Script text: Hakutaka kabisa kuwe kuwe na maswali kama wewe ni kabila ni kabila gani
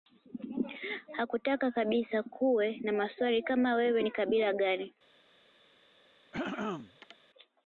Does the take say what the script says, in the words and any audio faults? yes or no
no